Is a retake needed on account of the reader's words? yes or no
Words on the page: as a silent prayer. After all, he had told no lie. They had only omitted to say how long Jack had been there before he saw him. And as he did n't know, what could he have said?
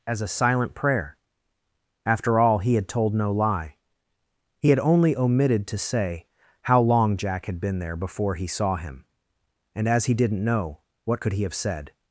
yes